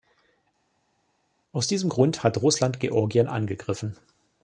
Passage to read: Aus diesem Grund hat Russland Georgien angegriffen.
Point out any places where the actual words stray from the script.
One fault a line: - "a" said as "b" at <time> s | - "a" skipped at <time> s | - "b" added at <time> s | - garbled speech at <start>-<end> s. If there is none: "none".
none